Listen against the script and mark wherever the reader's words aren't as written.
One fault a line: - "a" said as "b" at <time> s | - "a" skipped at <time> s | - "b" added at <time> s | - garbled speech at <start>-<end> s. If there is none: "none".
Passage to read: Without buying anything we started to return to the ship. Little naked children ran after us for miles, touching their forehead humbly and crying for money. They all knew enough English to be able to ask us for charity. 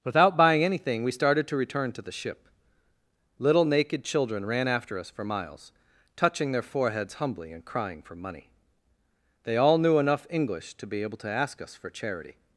- "forehead" said as "foreheads" at 6.6 s